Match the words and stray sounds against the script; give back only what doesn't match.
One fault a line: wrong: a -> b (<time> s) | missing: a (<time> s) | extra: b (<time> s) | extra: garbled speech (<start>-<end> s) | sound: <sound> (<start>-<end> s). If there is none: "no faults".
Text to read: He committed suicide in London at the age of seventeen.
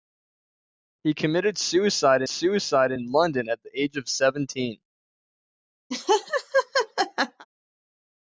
extra: suicide (2.3 s)
sound: laugh (5.9-7.5 s)